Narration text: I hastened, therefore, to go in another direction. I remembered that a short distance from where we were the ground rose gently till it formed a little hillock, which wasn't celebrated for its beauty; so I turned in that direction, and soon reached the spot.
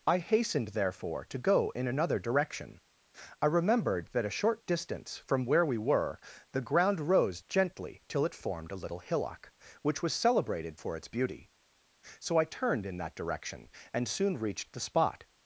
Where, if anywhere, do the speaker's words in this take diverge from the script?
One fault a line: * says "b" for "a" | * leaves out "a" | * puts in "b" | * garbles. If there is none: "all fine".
* says "was" for "wasn't"